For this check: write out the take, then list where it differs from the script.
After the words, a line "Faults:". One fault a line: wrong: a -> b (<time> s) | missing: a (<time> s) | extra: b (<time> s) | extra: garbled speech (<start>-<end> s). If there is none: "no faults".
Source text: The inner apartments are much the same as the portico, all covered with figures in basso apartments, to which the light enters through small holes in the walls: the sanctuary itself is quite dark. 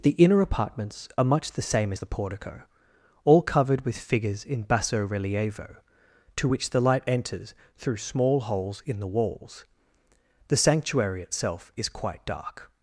The inner apartments are much the same as the portico, all covered with figures in basso relievo, to which the light enters through small holes in the walls: the sanctuary itself is quite dark.
Faults:
wrong: apartments -> relievo (5.1 s)